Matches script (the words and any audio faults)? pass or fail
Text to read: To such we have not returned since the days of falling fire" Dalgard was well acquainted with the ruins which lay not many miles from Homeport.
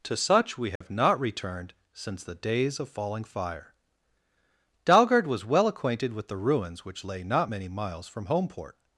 fail